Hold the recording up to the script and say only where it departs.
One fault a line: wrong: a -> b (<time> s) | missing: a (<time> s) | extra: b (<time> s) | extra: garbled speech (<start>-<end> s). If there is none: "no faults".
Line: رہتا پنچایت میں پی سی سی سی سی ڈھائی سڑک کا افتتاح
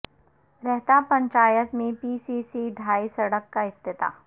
missing: سی سی (2.7 s)